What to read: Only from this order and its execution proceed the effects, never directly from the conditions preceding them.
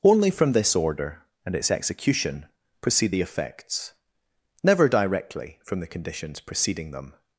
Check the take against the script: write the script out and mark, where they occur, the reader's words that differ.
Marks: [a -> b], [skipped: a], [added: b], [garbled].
Only from this order and its execution proceed the effects, never directly from the conditions preceding them.